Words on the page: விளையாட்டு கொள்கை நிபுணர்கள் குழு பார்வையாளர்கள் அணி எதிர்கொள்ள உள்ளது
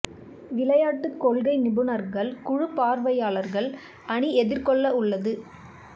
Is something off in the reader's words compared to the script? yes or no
no